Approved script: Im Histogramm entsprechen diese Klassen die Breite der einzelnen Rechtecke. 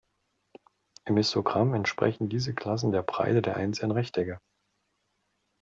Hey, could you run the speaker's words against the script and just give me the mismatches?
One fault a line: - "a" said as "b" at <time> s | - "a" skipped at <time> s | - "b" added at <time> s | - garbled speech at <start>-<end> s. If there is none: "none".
- "die" said as "der" at 2.9 s